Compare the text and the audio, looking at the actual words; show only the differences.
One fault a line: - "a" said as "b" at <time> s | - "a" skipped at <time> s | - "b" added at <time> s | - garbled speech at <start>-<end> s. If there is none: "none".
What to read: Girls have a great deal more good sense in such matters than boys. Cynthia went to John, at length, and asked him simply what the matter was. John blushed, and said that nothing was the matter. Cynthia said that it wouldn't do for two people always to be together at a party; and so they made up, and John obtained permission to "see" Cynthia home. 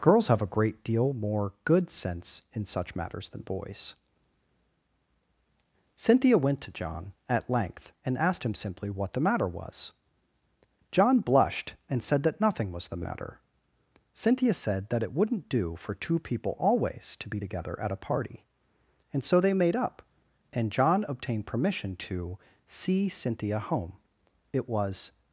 - "It was" added at 24.5 s